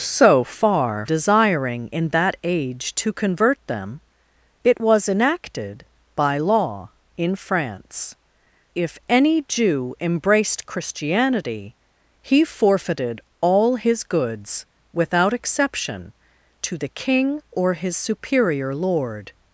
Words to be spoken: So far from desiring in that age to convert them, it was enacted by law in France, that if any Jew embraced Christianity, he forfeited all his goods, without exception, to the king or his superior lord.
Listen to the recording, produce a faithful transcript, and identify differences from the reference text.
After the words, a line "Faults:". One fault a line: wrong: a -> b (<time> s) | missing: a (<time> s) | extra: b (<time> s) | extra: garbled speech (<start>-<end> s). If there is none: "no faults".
So far desiring in that age to convert them, it was enacted by law in France, if any Jew embraced Christianity, he forfeited all his goods, without exception, to the king or his superior lord.
Faults:
missing: from (1.1 s)
missing: that (8.2 s)